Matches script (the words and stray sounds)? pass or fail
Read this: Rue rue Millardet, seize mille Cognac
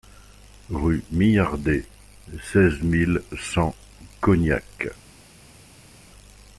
fail